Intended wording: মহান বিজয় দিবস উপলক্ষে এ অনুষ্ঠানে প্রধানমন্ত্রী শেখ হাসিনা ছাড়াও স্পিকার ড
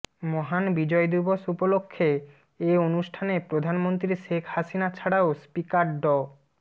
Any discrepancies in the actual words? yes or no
no